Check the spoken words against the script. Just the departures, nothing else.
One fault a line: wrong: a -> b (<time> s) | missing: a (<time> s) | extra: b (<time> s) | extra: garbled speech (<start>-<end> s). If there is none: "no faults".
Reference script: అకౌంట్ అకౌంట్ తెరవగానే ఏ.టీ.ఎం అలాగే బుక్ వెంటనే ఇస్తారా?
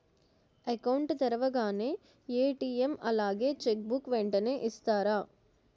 missing: అకౌంట్ (1.2 s)
extra: చెక్ (3.6 s)